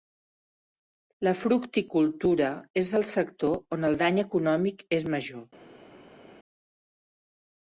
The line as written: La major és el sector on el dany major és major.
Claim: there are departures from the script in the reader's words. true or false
true